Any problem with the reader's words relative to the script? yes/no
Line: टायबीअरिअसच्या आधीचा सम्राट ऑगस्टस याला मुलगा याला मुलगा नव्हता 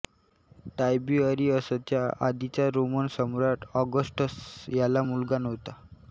yes